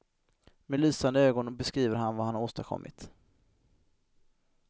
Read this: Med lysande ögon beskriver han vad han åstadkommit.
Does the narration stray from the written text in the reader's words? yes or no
no